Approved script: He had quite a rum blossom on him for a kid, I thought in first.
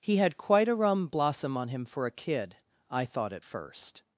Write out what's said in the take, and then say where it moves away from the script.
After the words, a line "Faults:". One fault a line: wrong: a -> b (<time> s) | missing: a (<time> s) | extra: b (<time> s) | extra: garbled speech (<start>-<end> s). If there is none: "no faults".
He had quite a rum blossom on him for a kid, I thought at first.
Faults:
wrong: in -> at (3.3 s)